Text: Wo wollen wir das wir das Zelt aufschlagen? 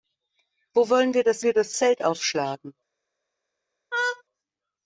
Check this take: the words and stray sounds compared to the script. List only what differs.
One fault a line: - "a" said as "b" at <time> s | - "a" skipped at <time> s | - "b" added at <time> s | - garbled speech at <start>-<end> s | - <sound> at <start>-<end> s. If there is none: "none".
- laugh at 3.9-4.2 s